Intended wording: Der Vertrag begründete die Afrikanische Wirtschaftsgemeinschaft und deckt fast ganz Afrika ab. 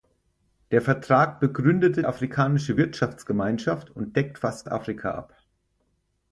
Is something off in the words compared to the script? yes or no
yes